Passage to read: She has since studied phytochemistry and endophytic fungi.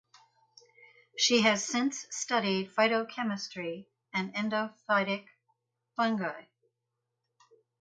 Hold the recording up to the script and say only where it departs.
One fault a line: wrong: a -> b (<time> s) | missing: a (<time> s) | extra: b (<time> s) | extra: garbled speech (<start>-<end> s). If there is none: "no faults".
no faults